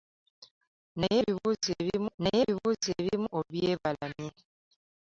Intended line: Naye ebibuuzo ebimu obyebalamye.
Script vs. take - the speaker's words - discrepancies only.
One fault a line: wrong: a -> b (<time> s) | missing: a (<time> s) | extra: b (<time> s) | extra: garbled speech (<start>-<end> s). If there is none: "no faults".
extra: naye ebibuuzo ebimu (2.2 s)